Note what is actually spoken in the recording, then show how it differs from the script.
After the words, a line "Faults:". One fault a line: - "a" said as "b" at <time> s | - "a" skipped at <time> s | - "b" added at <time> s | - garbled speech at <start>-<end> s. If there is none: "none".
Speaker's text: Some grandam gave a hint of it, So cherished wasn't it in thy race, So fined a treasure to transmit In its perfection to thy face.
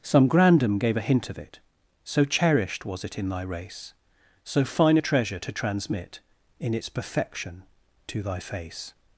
Some grandam gave a hint of it, So cherished was it in thy race, So fine a treasure to transmit In its perfection to thy face.
Faults:
- "wasn't" said as "was" at 2.9 s
- "fined" said as "fine" at 4.7 s